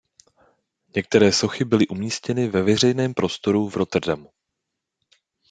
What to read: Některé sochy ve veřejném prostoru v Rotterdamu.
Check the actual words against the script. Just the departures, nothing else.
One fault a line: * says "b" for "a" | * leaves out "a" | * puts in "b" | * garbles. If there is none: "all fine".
* puts in "byly umístěny"